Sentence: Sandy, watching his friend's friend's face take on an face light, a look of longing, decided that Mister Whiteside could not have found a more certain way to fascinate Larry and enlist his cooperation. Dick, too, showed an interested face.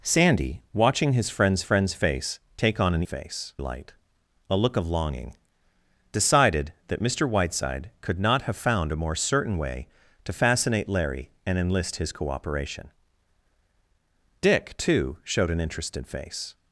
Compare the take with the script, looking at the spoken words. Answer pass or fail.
pass